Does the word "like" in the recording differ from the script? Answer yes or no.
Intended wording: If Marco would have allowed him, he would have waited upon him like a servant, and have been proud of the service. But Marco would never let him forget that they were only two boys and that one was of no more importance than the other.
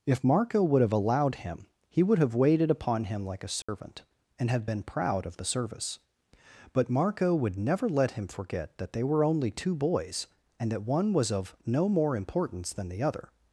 no